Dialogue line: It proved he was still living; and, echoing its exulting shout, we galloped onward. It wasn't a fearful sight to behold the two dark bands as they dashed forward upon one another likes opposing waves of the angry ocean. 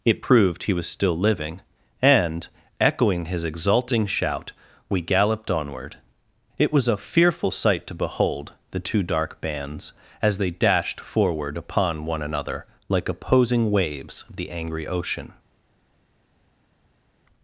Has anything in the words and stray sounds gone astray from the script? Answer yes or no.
yes